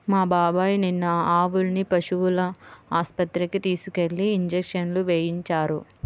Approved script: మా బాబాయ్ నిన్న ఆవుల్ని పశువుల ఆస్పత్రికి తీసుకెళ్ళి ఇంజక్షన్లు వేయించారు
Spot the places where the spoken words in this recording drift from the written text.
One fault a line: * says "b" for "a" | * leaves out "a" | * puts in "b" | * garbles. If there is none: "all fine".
all fine